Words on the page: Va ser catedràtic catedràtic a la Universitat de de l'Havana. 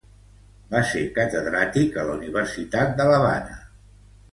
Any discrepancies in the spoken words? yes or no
yes